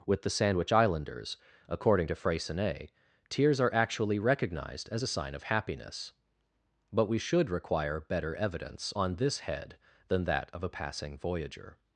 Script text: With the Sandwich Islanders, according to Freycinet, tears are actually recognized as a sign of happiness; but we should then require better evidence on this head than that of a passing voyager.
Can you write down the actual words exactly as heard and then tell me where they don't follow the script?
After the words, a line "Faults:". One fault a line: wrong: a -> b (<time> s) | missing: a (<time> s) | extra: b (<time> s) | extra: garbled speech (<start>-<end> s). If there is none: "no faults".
With the Sandwich Islanders, according to Freycinet, tears are actually recognized as a sign of happiness; but we should require better evidence on this head than that of a passing voyager.
Faults:
missing: then (7.5 s)